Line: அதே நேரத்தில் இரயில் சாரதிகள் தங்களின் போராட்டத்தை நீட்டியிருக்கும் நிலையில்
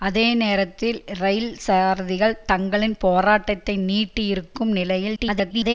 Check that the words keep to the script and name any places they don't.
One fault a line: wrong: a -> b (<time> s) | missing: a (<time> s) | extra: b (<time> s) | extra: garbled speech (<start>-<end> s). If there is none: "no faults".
extra: garbled speech (5.2-5.7 s)